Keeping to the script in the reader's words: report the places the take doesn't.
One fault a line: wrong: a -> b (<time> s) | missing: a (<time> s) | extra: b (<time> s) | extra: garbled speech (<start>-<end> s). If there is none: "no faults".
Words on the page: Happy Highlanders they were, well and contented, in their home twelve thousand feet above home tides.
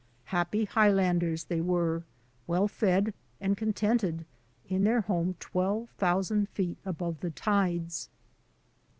extra: fed (2.7 s)
wrong: home -> the (7.2 s)